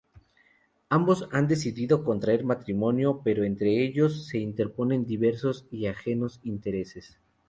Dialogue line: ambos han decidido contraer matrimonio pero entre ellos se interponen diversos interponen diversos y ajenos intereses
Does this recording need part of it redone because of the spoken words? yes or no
yes